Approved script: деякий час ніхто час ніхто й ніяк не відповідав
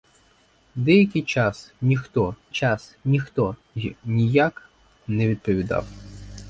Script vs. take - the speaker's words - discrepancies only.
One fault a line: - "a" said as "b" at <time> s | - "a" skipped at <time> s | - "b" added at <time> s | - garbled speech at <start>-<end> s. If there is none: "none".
none